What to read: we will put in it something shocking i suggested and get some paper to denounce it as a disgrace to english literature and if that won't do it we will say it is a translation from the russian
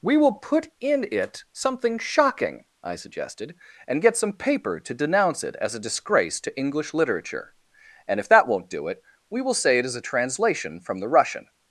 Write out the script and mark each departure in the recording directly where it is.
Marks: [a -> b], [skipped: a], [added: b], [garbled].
we will put in it something shocking i suggested and get some paper to denounce it as a disgrace to english literature and if that won't do it we will say it is a translation from the russian